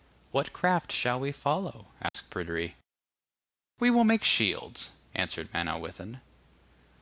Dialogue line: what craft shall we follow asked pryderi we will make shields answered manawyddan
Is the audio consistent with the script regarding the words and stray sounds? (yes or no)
no